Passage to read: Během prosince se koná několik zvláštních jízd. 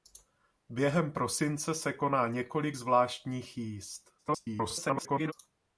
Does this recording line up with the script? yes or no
no